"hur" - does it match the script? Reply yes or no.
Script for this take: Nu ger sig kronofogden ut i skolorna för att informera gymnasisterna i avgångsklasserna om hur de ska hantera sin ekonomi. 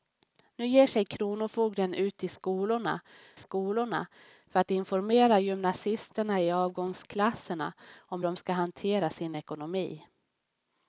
no